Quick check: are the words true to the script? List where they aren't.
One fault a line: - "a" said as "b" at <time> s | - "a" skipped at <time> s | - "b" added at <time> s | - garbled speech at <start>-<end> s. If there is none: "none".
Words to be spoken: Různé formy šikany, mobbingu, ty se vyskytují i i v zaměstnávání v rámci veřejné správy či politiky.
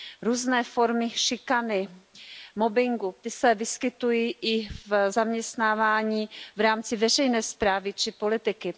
- "i" skipped at 4.7 s